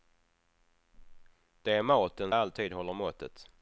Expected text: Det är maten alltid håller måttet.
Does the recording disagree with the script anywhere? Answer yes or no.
no